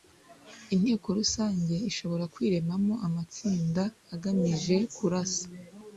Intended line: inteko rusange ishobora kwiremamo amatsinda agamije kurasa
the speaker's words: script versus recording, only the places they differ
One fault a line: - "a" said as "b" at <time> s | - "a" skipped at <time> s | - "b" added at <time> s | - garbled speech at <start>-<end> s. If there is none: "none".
none